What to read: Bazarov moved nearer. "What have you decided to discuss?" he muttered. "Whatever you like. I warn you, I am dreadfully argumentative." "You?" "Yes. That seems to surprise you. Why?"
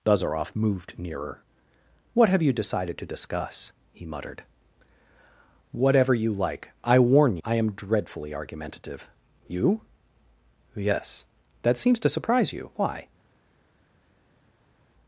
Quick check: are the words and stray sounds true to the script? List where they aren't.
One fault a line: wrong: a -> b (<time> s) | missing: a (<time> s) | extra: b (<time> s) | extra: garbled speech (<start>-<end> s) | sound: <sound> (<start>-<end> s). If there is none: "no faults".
missing: you (7.4 s)